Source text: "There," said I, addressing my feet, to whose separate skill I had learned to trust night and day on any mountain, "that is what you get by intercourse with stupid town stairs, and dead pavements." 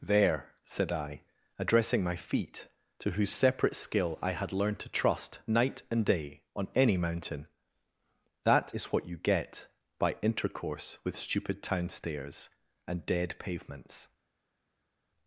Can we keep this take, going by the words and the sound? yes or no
yes